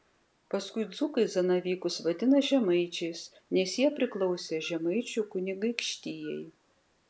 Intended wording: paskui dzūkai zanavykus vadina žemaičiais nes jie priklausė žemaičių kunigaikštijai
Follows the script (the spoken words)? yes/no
yes